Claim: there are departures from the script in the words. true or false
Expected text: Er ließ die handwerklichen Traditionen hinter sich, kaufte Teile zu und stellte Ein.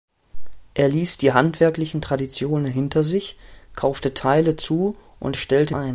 false